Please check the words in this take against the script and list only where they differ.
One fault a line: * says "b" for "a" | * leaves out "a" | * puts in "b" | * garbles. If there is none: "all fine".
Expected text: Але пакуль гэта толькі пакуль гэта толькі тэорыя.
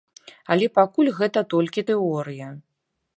* leaves out "пакуль гэта толькі"